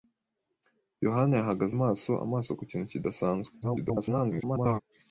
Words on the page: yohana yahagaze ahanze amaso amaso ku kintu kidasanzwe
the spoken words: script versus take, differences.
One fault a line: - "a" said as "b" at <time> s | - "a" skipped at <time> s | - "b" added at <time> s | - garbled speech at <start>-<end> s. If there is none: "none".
- "ahanze" skipped at 1.7 s
- garbled speech at 3.6-4.8 s